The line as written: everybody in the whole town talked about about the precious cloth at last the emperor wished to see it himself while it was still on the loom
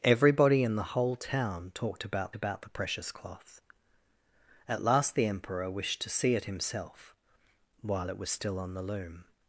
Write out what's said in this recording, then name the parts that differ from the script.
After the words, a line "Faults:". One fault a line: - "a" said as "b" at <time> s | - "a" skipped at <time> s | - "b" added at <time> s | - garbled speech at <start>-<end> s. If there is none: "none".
everybody in the whole town talked about about the precious cloth at last the emperor wished to see it himself while it was still on the loom
Faults:
none